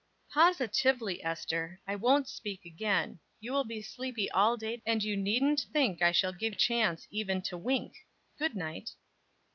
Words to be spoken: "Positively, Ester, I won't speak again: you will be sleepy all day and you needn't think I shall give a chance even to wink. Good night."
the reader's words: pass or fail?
pass